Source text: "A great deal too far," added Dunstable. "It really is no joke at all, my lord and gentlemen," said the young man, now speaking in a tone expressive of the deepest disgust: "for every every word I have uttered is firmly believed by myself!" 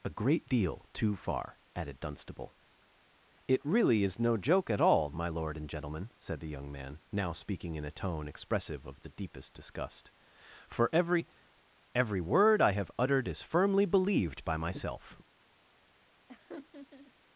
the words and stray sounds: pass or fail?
fail